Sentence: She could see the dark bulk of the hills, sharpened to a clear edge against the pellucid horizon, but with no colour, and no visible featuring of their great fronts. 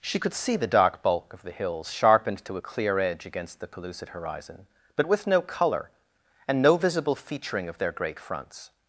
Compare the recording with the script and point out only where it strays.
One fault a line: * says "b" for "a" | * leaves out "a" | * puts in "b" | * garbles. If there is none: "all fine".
all fine